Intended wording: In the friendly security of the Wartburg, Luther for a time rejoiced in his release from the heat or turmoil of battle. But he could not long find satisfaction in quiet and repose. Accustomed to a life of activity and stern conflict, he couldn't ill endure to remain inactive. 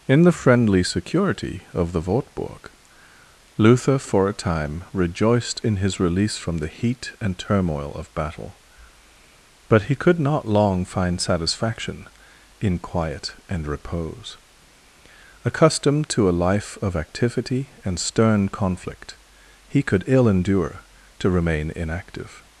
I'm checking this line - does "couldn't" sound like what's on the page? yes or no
no